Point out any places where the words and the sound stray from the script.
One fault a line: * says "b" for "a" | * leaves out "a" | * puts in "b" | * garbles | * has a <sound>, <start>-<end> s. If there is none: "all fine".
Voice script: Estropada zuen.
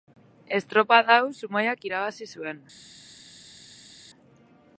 * puts in "hau Zumaiak irabazi"